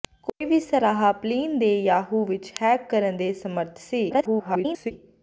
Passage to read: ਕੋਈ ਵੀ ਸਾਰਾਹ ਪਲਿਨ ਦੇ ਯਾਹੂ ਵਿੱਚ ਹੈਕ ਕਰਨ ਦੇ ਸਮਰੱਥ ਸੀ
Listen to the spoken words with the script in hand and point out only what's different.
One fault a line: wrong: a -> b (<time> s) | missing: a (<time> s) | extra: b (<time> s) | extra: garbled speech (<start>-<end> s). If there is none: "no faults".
extra: garbled speech (4.1-4.9 s)